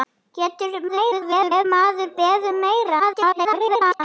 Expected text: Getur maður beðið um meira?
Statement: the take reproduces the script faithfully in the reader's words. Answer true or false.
false